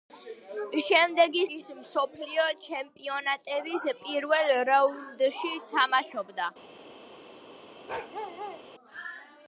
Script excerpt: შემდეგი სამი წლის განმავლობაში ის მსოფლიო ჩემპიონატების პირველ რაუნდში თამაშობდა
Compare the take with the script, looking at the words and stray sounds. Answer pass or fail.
fail